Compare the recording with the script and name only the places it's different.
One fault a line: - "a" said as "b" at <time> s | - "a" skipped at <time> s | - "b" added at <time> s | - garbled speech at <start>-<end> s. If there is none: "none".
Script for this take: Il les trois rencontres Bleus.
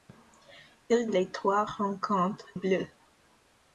none